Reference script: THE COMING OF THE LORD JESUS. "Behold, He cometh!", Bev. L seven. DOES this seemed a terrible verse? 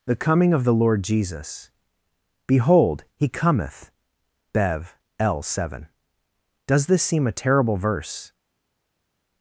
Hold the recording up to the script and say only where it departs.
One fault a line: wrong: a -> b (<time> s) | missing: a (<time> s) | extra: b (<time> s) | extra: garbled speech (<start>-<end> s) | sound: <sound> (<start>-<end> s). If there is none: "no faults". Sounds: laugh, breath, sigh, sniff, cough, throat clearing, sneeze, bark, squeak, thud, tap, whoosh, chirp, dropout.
wrong: seemed -> seem (7.0 s)